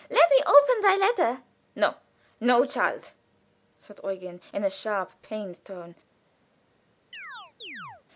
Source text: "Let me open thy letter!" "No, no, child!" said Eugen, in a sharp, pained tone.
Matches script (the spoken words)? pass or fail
pass